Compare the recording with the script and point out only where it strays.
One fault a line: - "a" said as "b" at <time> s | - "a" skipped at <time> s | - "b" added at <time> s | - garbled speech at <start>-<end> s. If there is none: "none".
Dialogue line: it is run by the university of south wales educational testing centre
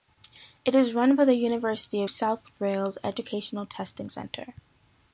none